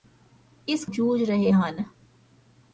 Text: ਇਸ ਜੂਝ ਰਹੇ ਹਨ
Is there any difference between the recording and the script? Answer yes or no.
no